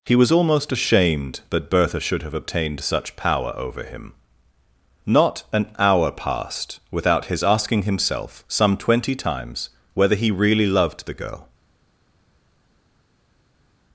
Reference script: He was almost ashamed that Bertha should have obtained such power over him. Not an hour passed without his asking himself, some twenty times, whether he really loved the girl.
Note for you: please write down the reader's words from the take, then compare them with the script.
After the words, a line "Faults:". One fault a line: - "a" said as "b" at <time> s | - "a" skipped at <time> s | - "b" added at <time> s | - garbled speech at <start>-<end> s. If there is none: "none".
He was almost ashamed that Bertha should have obtained such power over him. Not an hour passed without his asking himself, some twenty times, whether he really loved the girl.
Faults:
none